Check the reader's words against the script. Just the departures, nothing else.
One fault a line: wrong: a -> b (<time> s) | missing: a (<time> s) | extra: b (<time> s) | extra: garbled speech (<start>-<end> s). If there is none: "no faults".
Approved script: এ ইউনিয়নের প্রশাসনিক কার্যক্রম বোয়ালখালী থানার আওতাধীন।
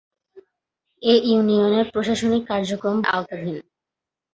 missing: বোয়ালখালী থানার (3.0 s)